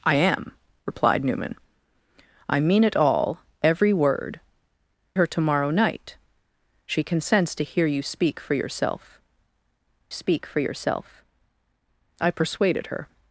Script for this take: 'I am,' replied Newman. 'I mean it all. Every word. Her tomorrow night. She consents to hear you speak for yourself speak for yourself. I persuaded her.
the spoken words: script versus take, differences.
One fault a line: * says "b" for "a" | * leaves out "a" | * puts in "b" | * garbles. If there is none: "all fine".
all fine